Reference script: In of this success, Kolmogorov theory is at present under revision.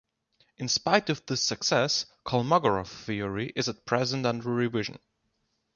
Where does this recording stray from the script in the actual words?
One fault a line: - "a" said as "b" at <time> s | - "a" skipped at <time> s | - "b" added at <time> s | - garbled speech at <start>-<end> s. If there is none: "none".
- "spite" added at 0.7 s